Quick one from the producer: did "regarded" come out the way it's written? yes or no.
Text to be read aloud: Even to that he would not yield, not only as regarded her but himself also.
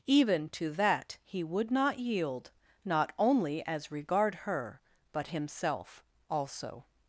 no